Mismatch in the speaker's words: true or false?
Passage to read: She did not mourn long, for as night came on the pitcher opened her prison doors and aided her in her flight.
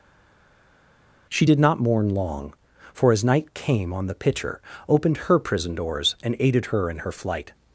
false